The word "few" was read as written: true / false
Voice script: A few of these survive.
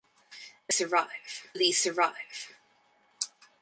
false